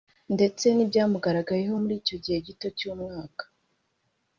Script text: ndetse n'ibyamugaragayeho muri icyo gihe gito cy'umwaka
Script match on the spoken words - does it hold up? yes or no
yes